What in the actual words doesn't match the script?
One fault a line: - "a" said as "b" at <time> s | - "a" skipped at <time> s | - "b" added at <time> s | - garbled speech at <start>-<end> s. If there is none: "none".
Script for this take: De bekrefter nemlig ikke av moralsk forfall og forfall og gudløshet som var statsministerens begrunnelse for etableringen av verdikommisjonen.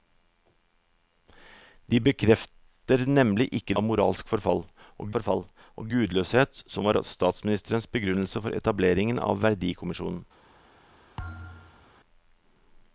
none